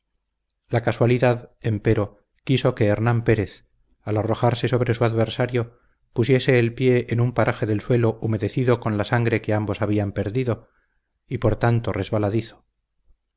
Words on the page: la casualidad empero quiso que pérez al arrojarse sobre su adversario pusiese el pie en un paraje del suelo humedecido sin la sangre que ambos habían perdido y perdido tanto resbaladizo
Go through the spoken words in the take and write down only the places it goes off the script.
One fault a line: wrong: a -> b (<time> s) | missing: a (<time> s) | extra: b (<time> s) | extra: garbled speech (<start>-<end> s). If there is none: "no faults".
extra: hernán (2.9 s)
wrong: sin -> con (8.8 s)
wrong: perdido -> por (11.4 s)